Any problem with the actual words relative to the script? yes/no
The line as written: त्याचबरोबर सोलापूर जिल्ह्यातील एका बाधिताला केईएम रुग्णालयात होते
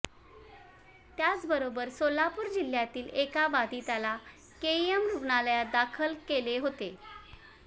yes